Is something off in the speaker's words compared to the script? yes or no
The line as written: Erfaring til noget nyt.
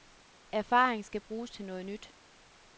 yes